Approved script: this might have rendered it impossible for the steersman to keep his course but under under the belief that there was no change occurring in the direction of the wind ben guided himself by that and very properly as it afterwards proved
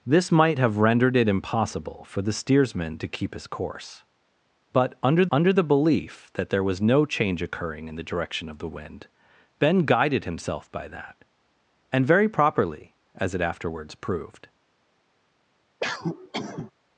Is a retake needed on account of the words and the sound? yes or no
yes